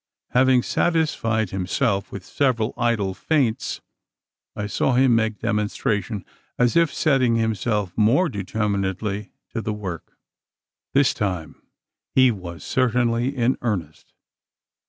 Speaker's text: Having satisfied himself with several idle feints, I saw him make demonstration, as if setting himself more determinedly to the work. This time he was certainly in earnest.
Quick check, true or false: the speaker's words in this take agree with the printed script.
true